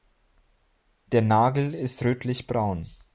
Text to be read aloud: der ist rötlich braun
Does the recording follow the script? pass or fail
fail